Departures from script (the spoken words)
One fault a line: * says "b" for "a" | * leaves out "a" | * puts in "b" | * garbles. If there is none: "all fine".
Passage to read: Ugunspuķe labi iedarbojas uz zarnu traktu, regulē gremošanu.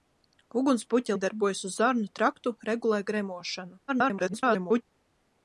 * leaves out "labi"
* garbles